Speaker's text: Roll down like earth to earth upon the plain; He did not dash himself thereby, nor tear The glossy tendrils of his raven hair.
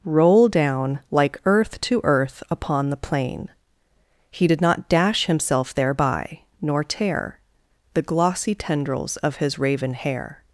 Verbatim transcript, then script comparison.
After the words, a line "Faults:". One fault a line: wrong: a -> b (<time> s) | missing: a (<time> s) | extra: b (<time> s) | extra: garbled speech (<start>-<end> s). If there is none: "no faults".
Roll down like earth to earth upon the plain; He did not dash himself thereby, nor tear The glossy tendrils of his raven hair.
Faults:
no faults